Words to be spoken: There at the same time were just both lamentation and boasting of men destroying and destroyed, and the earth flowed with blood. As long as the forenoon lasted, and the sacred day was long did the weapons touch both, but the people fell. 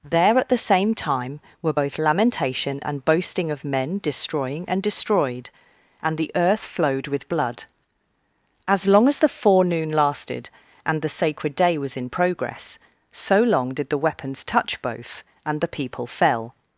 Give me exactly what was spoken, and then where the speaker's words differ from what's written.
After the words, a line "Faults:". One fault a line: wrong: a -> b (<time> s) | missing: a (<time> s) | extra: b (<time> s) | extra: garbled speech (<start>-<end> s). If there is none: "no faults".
There at the same time were both lamentation and boasting of men destroying and destroyed, and the earth flowed with blood. As long as the forenoon lasted, and the sacred day was in progress, so long did the weapons touch both, and the people fell.
Faults:
missing: just (1.8 s)
extra: in progress so (12.0 s)
wrong: but -> and (15.4 s)